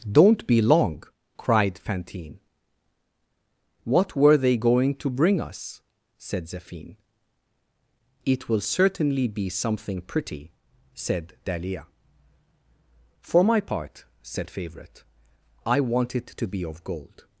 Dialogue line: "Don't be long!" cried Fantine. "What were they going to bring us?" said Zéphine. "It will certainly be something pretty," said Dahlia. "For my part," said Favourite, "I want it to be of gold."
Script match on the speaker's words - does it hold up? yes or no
yes